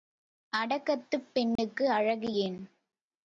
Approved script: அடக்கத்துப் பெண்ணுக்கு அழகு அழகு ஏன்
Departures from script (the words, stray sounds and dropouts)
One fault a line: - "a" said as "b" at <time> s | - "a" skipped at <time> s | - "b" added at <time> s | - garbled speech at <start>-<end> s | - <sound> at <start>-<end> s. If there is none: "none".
- dropout at 1.6-1.6 s
- "அழகு" skipped at 2.3 s